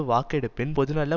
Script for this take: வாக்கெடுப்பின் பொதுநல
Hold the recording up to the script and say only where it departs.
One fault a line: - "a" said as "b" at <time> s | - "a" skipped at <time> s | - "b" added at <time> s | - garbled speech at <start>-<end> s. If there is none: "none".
none